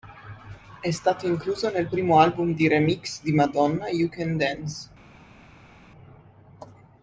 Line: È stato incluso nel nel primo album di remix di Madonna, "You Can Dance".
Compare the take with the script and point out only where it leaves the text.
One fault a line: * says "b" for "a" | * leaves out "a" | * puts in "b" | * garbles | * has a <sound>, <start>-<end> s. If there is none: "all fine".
* leaves out "nel"